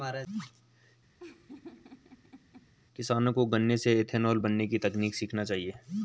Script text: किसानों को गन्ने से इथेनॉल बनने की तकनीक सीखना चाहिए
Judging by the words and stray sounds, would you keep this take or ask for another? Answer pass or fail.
fail